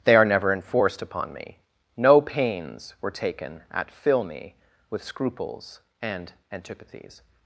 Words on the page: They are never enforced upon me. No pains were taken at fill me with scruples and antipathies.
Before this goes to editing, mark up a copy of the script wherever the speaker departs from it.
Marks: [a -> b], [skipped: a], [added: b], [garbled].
They are never enforced upon me. No pains were taken at fill me with scruples and antipathies.